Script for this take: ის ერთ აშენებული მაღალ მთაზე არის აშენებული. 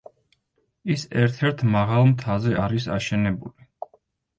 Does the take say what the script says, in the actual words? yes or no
no